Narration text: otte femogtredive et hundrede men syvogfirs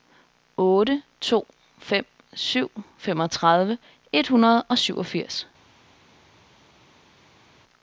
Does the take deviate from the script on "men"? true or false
true